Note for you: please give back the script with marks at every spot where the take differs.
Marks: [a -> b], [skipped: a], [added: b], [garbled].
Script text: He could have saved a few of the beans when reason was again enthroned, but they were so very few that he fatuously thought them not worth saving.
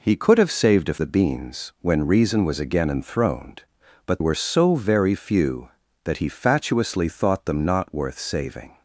He could have saved a [skipped: few of] the beans when reason was again enthroned, but [skipped: they] were so very few that he fatuously thought them not worth saving.